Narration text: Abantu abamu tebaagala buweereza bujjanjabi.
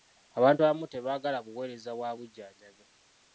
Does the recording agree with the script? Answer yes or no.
no